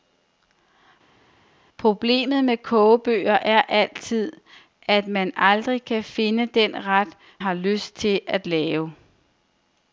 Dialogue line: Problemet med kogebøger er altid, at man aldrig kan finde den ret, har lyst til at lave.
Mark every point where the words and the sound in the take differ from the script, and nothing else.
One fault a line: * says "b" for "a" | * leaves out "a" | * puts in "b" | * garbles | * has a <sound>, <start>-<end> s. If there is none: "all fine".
all fine